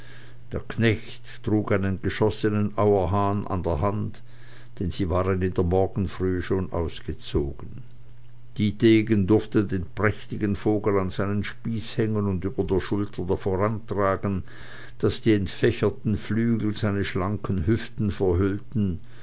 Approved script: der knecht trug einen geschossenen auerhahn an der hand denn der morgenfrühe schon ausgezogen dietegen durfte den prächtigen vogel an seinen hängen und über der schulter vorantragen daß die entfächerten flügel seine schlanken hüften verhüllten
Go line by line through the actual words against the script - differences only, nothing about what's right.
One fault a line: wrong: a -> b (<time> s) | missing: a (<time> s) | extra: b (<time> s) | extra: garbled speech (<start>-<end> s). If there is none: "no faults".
extra: sie waren in (4.9 s)
extra: spieß (11.4 s)